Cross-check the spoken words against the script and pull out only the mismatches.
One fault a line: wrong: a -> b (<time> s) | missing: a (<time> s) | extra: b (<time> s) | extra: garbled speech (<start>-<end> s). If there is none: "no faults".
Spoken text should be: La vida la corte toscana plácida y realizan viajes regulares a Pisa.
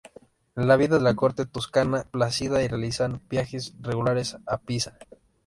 no faults